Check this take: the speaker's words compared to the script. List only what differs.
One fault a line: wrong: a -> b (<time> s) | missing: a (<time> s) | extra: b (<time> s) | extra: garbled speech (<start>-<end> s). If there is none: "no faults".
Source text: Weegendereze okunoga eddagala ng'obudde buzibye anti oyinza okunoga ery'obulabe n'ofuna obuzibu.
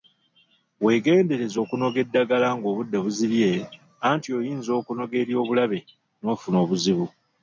no faults